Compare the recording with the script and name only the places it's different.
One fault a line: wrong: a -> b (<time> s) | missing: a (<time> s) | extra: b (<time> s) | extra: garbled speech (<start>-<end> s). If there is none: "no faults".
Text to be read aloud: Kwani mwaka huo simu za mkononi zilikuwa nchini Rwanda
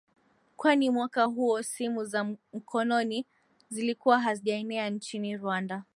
extra: hazijaenea (4.2 s)